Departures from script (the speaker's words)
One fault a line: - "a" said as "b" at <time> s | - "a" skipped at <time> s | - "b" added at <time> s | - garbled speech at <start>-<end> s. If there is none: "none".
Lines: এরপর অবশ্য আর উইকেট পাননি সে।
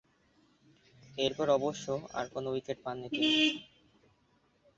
- "কোন" added at 2.3 s
- "সে" said as "তিনি" at 3.1 s